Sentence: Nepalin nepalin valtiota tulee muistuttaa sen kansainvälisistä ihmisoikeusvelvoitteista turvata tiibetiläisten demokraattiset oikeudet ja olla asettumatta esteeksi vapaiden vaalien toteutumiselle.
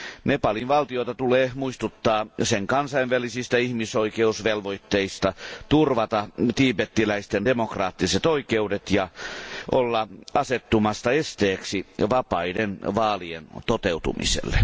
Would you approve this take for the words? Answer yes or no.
no